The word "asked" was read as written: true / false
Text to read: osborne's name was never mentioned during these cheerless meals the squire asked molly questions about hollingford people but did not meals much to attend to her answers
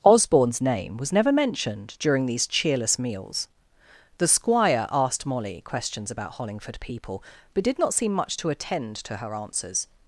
true